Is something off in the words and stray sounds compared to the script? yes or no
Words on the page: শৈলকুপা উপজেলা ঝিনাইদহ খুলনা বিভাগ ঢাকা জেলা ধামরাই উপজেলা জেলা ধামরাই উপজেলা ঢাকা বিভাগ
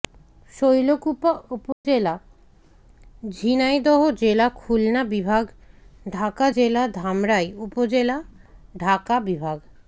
yes